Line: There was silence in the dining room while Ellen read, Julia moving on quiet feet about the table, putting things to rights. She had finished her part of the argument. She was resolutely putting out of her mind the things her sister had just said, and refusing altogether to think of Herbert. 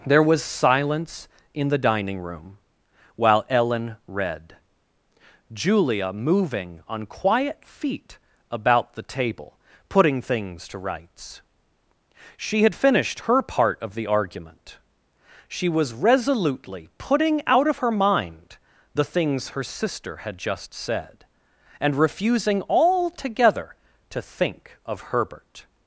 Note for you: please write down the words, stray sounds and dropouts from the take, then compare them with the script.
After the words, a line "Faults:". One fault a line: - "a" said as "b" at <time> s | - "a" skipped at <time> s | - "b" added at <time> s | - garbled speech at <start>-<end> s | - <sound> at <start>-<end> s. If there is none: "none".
There was silence in the dining room while Ellen read, Julia moving on quiet feet about the table, putting things to rights. She had finished her part of the argument. She was resolutely putting out of her mind the things her sister had just said, and refusing altogether to think of Herbert.
Faults:
none